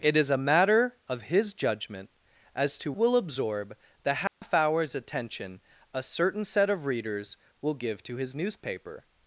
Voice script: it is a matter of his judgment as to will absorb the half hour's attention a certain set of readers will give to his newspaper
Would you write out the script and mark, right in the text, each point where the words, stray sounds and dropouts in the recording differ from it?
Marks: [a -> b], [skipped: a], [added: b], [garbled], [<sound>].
it is a matter of his judgment as to will absorb the half [dropout] hour's attention a certain set of readers will give to his newspaper